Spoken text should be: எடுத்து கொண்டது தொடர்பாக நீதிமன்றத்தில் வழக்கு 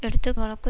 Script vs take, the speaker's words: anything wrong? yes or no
yes